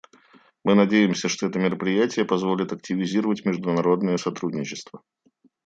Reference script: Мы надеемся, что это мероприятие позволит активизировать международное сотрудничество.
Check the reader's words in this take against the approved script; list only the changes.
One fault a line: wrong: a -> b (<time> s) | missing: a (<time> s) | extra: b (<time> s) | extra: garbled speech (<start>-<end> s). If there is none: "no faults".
no faults